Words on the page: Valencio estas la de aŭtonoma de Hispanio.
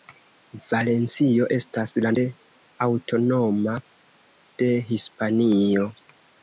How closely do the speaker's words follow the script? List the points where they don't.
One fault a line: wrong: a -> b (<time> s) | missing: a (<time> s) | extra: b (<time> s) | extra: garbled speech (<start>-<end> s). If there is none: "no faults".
no faults